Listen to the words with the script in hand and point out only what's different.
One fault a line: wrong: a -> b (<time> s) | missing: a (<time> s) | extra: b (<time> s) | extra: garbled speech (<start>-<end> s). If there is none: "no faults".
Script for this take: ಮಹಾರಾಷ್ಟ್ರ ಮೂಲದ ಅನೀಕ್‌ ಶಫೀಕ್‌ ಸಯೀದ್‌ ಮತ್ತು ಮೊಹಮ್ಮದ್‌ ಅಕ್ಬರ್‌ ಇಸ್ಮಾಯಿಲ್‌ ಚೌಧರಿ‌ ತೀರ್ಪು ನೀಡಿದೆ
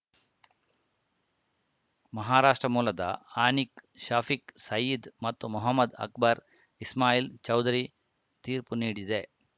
no faults